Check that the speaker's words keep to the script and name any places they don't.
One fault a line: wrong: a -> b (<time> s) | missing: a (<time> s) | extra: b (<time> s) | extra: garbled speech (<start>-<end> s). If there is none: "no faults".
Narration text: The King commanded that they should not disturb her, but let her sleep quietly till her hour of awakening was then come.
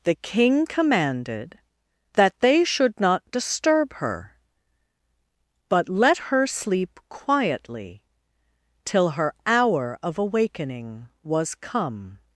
missing: then (11.6 s)